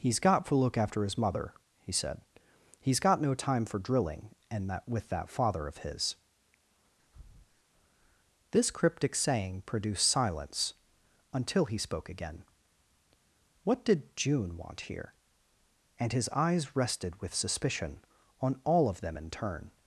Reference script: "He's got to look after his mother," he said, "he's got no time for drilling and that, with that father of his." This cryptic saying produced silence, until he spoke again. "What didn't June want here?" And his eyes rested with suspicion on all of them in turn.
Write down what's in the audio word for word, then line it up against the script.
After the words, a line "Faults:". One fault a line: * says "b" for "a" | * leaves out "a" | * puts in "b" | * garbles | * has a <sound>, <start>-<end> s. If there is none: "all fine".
"He's got to look after his mother," he said, "he's got no time for drilling and that, with that father of his." This cryptic saying produced silence, until he spoke again. "What did June want here?" And his eyes rested with suspicion on all of them in turn.
Faults:
* has a breath, 7.0-7.6 s
* says "did" for "didn't"